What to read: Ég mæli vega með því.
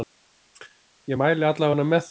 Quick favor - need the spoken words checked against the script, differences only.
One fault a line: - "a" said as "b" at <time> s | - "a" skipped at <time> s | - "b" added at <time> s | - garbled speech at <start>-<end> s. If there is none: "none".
- "alla" added at 1.5 s